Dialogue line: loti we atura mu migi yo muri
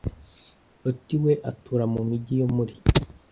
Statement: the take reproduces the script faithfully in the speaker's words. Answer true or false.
true